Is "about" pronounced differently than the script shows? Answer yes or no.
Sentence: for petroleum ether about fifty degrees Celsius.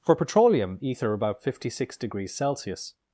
no